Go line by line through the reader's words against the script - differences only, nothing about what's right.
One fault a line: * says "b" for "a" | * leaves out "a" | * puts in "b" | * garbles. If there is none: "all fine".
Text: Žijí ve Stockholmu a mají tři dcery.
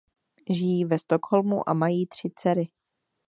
all fine